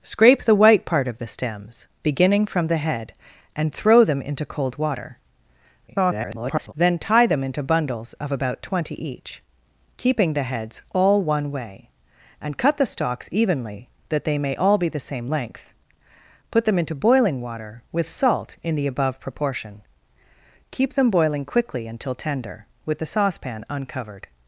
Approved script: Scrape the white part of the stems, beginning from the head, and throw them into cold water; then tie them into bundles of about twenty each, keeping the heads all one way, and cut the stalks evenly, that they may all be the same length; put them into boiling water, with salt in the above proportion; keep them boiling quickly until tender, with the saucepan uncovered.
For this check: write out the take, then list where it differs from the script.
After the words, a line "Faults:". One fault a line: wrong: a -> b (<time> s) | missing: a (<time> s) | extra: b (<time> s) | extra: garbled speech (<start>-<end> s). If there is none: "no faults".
Scrape the white part of the stems, beginning from the head, and throw them into cold water; [garbled] then tie them into bundles of about twenty each, keeping the heads all one way, and cut the stalks evenly, that they may all be the same length; put them into boiling water, with salt in the above proportion; keep them boiling quickly until tender, with the saucepan uncovered.
Faults:
extra: garbled speech (5.9-6.7 s)